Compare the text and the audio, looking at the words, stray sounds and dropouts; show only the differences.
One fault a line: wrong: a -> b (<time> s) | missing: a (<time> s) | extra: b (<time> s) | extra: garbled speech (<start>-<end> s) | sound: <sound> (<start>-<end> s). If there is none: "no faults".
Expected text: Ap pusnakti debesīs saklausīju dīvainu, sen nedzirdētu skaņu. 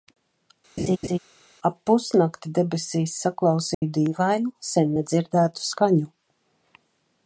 sound: laugh (0.8-1.2 s)
sound: dropout (3.7-3.8 s)